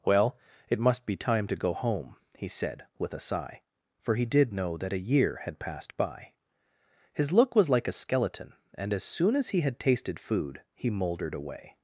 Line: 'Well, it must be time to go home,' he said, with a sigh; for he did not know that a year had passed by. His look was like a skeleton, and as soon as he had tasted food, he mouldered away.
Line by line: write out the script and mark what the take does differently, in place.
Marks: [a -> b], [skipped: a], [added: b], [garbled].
'Well, it must be time to go home,' he said, with a sigh; for he did [skipped: not] know that a year had passed by. His look was like a skeleton, and as soon as he had tasted food, he mouldered away.